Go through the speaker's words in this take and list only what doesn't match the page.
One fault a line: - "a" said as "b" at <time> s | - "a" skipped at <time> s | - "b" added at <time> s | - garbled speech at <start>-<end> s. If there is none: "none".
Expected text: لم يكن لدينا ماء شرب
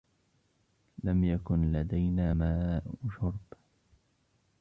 none